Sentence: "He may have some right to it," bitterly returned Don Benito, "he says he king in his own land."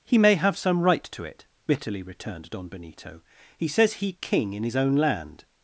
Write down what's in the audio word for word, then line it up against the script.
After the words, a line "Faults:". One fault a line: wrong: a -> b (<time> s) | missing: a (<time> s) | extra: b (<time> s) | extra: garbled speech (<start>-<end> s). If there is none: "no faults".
"He may have some right to it," bitterly returned Don Benito, "he says he king in his own land."
Faults:
no faults